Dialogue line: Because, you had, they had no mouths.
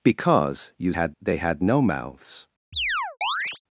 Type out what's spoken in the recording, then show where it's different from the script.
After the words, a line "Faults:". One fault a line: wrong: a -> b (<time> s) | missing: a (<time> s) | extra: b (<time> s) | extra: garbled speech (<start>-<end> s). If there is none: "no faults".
Because, you had, they had no mouths.
Faults:
no faults